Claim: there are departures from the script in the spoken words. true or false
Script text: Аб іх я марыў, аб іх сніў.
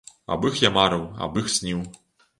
false